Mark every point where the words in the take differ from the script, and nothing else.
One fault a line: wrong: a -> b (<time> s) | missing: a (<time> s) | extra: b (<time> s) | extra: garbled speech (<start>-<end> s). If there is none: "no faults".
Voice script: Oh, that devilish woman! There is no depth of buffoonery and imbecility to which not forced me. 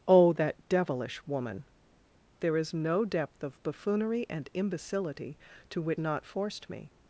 no faults